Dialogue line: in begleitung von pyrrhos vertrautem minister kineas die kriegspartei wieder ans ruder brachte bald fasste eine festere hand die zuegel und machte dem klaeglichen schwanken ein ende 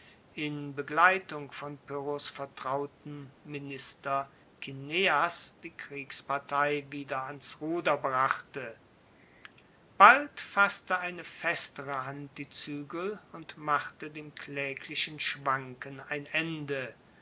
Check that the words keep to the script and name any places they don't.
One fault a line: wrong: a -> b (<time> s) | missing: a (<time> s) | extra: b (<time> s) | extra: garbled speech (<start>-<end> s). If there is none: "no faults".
no faults